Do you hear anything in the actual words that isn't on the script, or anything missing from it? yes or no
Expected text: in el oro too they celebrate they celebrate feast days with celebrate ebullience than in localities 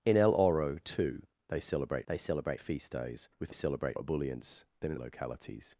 no